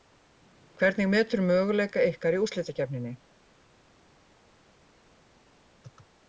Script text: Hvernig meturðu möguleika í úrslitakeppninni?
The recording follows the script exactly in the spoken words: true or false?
false